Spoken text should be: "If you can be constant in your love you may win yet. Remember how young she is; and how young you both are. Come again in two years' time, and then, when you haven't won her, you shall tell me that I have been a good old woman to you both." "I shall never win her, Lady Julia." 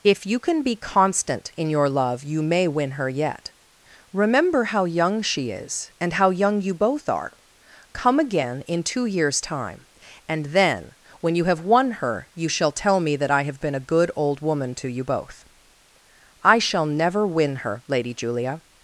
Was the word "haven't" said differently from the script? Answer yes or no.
yes